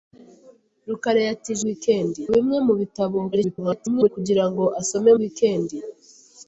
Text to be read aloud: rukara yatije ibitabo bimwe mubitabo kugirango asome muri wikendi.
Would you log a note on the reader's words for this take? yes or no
yes